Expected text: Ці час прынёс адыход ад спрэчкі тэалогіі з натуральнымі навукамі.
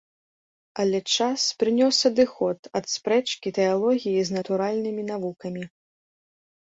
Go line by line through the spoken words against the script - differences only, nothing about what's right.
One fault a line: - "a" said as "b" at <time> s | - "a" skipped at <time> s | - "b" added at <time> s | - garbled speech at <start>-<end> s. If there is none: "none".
- "Ці" said as "Але" at 0.8 s